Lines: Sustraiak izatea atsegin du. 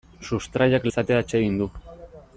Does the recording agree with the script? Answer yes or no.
yes